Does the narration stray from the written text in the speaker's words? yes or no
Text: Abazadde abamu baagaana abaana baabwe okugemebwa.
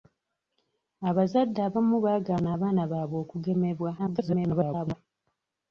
yes